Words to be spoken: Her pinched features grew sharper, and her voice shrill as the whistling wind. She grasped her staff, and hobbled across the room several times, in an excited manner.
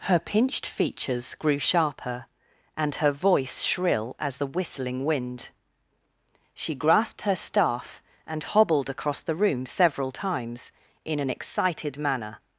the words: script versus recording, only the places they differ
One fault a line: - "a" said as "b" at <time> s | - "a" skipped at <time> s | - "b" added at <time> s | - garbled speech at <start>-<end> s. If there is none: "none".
none